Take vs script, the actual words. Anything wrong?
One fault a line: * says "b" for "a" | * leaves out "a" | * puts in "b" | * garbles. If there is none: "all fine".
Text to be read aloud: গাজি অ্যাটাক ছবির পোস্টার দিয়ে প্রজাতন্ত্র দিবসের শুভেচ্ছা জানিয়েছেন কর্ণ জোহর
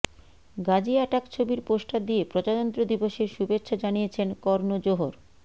all fine